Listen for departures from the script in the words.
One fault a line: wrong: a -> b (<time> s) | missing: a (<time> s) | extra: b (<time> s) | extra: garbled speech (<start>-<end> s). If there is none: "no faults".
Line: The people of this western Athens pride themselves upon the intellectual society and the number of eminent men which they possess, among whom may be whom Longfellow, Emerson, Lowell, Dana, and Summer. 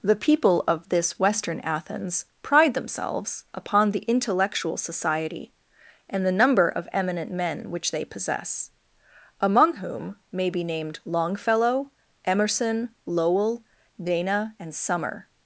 wrong: whom -> named (10.6 s)